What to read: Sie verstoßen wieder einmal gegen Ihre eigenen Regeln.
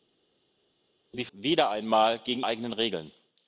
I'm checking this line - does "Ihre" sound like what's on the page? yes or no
no